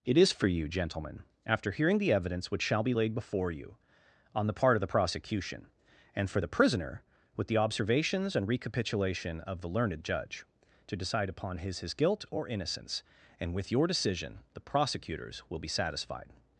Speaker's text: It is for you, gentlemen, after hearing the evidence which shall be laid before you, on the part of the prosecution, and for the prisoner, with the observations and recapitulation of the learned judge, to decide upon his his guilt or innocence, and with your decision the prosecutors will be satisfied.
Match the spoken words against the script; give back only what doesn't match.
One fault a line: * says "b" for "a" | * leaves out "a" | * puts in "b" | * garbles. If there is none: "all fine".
all fine